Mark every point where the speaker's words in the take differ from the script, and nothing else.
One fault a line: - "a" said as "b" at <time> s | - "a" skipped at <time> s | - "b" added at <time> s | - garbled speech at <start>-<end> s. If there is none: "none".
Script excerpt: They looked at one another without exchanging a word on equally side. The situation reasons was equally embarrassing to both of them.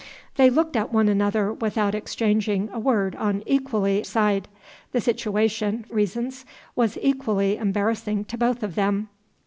none